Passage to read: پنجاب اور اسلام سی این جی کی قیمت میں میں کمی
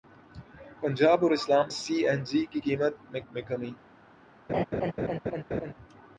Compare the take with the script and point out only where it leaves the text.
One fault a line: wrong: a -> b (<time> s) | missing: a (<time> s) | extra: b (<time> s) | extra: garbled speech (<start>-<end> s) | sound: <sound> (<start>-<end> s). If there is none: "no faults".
sound: laugh (4.5-5.7 s)